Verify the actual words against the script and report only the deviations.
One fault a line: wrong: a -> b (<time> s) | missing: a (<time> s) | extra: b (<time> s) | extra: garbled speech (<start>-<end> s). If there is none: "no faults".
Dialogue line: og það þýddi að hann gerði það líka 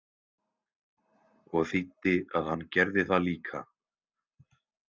missing: það (1.7 s)